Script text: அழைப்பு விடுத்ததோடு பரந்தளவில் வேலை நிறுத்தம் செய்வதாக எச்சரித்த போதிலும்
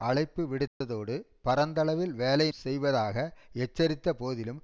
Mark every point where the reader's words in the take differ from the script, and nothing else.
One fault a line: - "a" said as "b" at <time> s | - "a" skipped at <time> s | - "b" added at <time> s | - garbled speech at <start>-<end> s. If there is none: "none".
- "நிறுத்தம்" skipped at 2.5 s